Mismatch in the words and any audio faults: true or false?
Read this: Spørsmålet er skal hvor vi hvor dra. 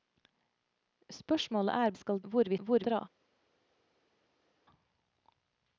false